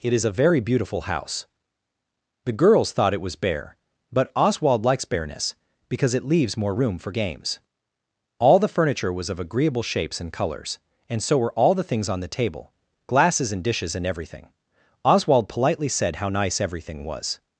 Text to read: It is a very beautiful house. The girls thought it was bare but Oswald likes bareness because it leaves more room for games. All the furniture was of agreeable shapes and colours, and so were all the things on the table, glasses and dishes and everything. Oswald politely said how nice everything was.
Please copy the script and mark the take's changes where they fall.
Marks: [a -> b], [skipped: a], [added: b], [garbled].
It is a very beautiful house. The girls thought it was bare but Oswald likes bareness because it leaves more room for games. All the furniture was of agreeable shapes and colours, and so were all the things on the table, glasses and dishes and everything. Oswald politely said how nice everything was.